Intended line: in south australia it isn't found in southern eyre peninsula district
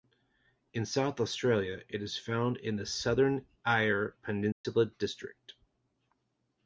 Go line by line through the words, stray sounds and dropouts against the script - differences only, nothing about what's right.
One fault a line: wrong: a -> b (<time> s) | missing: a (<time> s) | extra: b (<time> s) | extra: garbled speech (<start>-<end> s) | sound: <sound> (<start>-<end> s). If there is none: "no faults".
wrong: isn't -> is (2.0 s)
extra: the (2.8 s)
sound: dropout (4.5-4.6 s)